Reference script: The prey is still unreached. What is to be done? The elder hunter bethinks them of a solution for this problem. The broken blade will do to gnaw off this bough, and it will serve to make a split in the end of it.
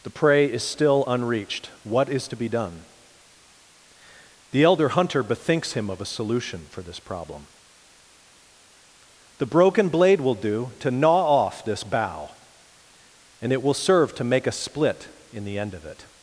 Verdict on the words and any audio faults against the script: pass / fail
fail